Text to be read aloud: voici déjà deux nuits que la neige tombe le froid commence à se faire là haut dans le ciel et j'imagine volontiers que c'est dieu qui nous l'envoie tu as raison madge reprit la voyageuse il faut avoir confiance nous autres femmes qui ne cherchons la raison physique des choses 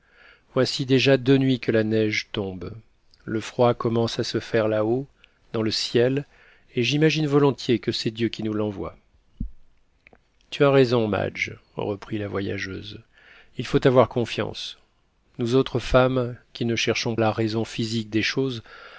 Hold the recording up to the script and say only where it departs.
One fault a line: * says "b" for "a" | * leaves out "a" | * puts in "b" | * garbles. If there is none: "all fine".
all fine